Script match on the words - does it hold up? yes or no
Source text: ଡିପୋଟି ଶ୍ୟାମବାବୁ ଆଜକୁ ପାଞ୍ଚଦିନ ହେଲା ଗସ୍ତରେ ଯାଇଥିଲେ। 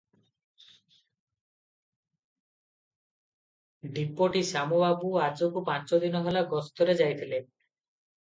yes